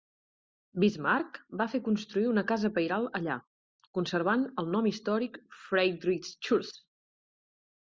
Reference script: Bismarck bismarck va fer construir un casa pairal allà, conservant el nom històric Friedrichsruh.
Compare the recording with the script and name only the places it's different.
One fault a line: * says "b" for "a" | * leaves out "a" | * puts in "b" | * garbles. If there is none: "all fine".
* leaves out "bismarck"
* says "una" for "un"